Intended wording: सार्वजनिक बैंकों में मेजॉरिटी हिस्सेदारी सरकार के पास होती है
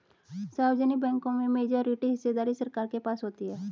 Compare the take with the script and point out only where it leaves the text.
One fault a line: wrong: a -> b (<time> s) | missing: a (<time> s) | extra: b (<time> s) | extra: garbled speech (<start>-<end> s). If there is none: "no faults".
no faults